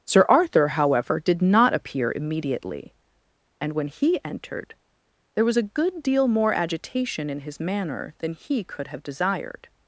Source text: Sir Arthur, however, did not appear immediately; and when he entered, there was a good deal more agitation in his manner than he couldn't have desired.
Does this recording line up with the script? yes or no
no